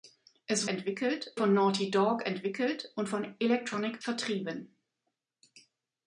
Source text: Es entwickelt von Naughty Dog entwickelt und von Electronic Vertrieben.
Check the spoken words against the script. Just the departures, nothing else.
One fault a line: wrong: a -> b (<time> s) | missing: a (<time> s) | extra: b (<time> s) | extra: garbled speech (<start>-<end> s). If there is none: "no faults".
no faults